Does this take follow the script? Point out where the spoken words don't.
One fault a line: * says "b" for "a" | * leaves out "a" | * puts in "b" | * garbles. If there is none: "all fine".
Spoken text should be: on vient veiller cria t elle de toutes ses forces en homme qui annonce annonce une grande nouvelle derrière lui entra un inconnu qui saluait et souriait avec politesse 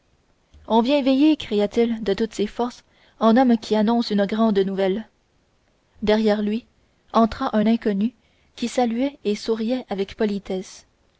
* says "il" for "elle"
* leaves out "annonce"